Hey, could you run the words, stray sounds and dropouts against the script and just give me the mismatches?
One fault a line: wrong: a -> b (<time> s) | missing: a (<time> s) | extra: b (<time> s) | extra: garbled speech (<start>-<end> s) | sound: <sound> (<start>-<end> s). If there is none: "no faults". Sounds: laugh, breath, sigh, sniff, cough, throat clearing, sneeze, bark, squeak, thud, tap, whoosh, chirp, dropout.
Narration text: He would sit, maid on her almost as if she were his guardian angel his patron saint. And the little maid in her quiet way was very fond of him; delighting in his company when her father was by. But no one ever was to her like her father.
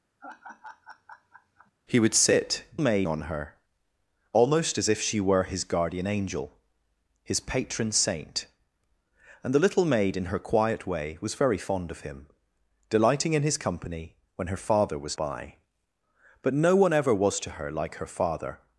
sound: laugh (0.2-1.7 s)